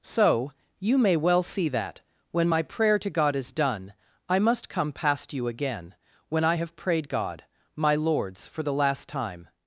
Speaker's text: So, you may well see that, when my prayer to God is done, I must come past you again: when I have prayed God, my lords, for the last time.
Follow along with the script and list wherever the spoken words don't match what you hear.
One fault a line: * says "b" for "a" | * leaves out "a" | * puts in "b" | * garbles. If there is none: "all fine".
all fine